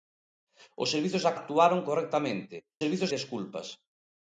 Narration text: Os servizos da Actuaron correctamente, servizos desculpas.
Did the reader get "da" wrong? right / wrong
right